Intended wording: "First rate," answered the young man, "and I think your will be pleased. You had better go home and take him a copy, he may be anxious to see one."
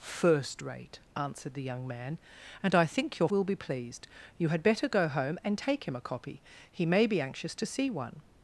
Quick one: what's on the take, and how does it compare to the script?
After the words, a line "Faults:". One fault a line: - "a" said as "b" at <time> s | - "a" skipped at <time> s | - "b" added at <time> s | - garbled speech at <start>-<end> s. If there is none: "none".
"First rate," answered the young man, "and I think your will be pleased. You had better go home and take him a copy, he may be anxious to see one."
Faults:
none